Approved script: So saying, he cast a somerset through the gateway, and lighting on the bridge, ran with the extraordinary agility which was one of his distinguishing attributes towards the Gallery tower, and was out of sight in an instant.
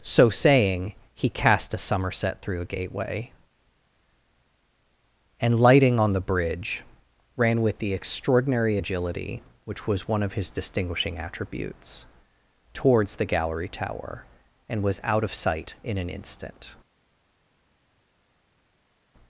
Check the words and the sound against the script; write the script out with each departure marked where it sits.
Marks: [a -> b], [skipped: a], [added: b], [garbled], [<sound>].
So saying, he cast a somerset through [the -> a] gateway, and lighting on the bridge, ran with the extraordinary agility which was one of his distinguishing attributes towards the Gallery tower, and was out of sight in an instant.